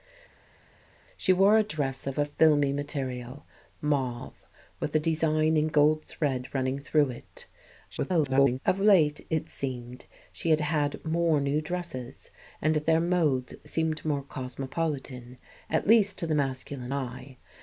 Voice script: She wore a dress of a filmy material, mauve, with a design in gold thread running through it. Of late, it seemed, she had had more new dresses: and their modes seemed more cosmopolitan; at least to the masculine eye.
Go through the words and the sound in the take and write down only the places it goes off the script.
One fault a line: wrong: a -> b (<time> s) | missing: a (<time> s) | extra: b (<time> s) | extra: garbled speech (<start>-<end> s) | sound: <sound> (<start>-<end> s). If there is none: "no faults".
extra: garbled speech (7.9-8.6 s)